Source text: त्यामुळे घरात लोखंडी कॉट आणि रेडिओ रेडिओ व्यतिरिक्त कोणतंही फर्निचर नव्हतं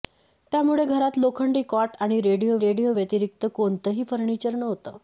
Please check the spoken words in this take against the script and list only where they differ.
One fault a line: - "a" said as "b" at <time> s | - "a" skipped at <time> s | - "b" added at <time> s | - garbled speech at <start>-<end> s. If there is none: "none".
none